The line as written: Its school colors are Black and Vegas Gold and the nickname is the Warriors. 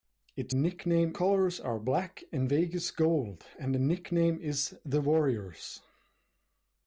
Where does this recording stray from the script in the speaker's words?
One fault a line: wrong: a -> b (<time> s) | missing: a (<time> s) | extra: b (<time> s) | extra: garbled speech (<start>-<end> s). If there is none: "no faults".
wrong: school -> nickname (0.5 s)